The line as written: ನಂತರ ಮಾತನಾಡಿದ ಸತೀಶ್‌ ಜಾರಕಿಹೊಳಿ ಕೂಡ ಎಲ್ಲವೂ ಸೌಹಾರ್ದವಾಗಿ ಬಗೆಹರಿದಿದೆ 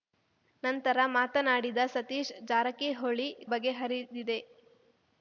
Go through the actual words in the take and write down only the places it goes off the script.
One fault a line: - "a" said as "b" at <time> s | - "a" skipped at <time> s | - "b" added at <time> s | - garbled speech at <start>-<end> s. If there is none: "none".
- "ಕೂಡ ಎಲ್ಲವೂ ಸೌಹಾರ್ದವಾಗಿ" skipped at 3.3 s